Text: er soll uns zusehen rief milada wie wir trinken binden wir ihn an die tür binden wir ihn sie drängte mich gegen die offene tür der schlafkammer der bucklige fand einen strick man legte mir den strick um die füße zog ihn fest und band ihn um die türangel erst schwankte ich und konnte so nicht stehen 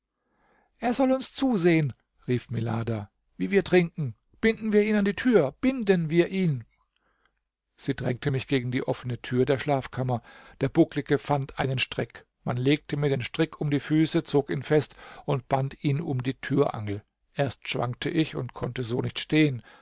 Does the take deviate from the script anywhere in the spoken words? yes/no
no